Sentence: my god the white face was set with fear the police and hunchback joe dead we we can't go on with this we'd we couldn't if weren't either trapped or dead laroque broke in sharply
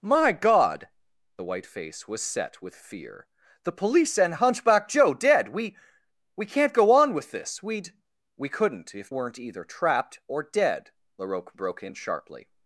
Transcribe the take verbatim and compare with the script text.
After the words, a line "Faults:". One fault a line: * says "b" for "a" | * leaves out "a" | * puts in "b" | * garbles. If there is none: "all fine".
my god the white face was set with fear the police and hunchback joe dead we we can't go on with this we'd we couldn't if weren't either trapped or dead laroque broke in sharply
Faults:
all fine